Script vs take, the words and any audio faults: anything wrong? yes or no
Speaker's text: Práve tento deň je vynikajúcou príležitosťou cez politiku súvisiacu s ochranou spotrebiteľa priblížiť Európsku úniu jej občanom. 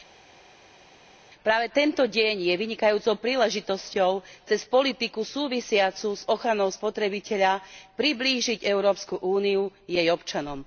no